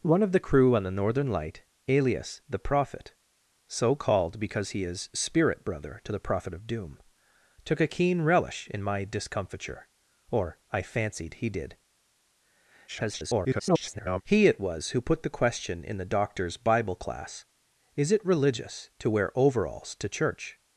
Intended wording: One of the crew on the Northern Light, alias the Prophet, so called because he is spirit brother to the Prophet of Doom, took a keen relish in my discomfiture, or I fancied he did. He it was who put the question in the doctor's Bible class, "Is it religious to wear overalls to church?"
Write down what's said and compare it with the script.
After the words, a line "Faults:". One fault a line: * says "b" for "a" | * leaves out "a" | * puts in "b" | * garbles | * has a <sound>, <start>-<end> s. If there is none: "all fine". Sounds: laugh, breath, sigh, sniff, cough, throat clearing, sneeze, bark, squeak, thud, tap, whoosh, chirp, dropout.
One of the crew on the Northern Light, alias the Prophet, so called because he is spirit brother to the Prophet of Doom, took a keen relish in my discomfiture, or I fancied he did. [garbled] He it was who put the question in the doctor's Bible class, "Is it religious to wear overalls to church?"
Faults:
* garbles